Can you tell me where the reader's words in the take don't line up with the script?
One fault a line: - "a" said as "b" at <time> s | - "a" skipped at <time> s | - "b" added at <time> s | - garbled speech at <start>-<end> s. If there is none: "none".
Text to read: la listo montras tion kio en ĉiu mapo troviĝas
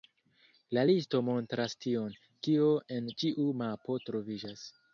none